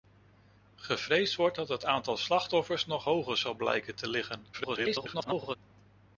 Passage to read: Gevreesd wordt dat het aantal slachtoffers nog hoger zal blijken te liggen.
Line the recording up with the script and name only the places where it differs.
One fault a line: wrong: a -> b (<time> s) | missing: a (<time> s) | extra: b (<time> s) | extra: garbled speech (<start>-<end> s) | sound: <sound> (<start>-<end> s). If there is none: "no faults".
extra: garbled speech (4.5-5.6 s)